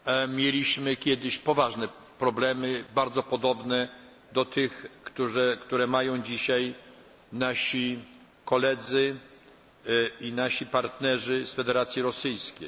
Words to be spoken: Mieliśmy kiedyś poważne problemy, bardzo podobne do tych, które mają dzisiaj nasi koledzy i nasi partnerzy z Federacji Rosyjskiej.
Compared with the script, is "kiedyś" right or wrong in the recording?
right